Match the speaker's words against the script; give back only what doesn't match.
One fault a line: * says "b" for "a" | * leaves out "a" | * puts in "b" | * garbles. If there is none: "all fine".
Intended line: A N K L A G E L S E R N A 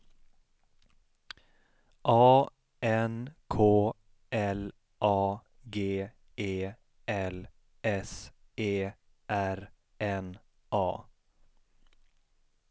all fine